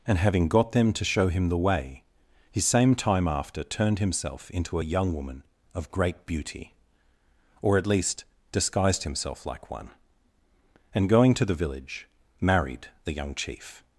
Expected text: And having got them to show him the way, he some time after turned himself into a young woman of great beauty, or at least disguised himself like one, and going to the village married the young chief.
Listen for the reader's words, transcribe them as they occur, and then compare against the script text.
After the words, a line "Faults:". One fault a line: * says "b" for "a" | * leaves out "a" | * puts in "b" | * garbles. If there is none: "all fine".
And having got them to show him the way, he same time after turned himself into a young woman of great beauty, or at least disguised himself like one, and going to the village married the young chief.
Faults:
* says "same" for "some"